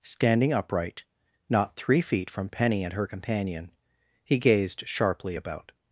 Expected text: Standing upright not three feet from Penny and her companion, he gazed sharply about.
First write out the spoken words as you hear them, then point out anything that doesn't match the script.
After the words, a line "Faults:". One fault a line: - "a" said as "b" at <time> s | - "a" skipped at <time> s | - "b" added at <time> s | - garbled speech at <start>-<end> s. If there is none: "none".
Standing upright not three feet from Penny and her companion, he gazed sharply about.
Faults:
none